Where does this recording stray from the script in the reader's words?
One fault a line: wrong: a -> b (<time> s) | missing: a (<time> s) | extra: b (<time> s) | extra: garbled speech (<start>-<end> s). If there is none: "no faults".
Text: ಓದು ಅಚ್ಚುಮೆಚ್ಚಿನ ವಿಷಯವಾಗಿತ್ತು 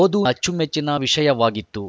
no faults